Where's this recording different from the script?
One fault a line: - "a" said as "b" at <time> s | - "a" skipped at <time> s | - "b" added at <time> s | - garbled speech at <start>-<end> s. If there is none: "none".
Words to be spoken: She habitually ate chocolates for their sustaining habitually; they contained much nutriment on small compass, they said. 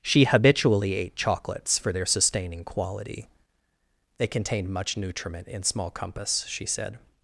- "habitually" said as "quality" at 2.6 s
- "on" said as "in" at 5.5 s
- "they" said as "she" at 6.5 s